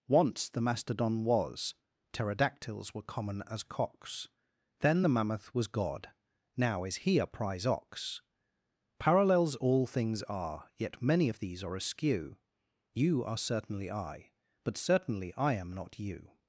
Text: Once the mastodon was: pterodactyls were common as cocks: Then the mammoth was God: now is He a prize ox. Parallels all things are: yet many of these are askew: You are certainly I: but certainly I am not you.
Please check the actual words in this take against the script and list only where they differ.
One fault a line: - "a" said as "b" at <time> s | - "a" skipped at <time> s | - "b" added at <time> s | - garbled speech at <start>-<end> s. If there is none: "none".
none